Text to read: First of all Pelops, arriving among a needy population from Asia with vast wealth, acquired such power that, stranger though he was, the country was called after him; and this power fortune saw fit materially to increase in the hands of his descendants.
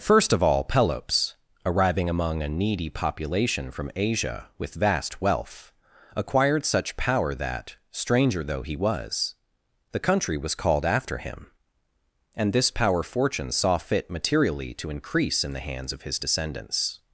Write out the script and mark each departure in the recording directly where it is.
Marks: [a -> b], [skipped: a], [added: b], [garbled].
First of all Pelops, arriving among a needy population from Asia with vast wealth, acquired such power that, stranger though he was, the country was called after him; and this power fortune saw fit materially to increase in the hands of his descendants.